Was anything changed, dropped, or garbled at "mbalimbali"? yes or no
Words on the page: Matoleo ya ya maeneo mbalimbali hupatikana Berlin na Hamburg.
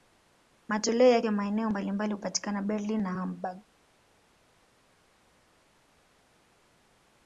no